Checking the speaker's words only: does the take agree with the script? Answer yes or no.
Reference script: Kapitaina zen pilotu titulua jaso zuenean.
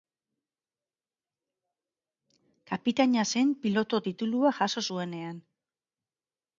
yes